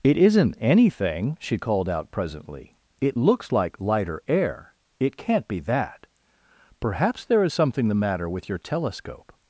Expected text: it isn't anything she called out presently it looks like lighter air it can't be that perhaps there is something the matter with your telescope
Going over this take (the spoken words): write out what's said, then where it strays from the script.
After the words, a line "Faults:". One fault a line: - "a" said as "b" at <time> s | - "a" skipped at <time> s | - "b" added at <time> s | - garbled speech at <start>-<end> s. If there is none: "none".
it isn't anything she called out presently it looks like lighter air it can't be that perhaps there is something the matter with your telescope
Faults:
none